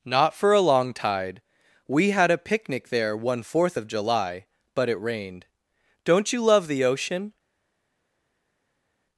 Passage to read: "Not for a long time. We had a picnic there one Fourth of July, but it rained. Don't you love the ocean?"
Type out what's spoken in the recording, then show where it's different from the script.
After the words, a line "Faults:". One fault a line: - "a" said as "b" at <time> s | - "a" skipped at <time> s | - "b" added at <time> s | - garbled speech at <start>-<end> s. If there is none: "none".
"Not for a long tide. We had a picnic there one Fourth of July, but it rained. Don't you love the ocean?"
Faults:
- "time" said as "tide" at 0.9 s